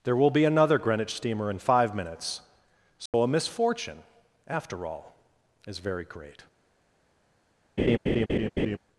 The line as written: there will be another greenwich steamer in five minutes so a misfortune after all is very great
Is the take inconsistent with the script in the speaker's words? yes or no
no